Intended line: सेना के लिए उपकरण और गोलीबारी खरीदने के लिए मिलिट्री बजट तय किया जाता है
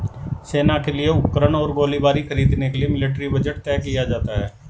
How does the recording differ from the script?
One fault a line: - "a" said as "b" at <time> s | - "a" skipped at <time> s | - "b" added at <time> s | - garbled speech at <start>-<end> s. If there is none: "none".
none